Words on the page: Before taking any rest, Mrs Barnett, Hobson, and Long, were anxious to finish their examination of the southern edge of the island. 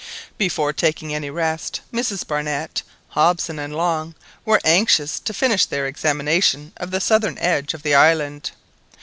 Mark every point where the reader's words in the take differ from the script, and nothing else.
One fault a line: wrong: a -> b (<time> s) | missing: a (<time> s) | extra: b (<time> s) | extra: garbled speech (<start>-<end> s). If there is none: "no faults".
no faults